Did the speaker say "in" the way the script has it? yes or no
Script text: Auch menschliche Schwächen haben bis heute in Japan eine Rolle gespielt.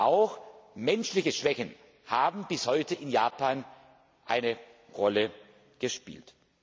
yes